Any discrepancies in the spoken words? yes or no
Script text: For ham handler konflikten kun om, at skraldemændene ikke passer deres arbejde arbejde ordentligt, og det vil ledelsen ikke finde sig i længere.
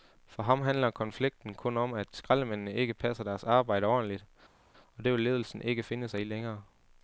yes